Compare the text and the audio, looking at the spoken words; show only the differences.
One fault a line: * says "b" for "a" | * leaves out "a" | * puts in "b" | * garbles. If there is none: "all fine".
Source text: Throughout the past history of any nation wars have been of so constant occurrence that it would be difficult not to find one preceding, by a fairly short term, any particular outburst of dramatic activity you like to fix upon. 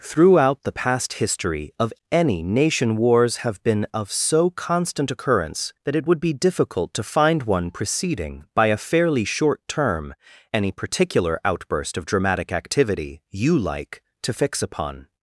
* leaves out "not"